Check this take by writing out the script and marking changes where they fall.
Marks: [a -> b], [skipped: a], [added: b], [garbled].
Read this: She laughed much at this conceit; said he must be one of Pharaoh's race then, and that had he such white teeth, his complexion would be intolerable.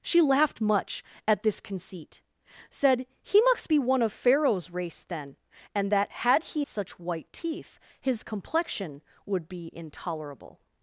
She laughed much at this conceit; said he must be one of Pharaoh's race then, and that had he such white teeth, his complexion would be intolerable.